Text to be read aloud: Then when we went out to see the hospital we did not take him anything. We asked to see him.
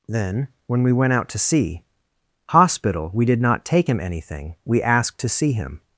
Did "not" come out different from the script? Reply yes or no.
no